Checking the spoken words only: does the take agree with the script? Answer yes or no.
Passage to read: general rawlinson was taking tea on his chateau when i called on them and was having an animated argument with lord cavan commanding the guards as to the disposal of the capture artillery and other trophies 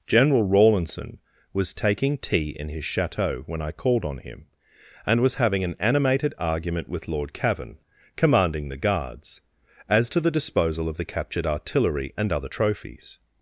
no